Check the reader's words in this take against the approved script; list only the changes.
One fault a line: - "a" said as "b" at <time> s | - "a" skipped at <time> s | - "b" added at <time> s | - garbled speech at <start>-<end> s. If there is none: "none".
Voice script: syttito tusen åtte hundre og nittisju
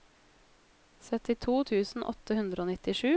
none